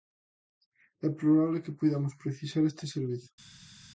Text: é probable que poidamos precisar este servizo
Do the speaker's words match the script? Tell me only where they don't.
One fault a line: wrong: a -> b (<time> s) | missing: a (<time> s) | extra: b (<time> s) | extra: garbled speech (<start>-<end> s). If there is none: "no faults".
no faults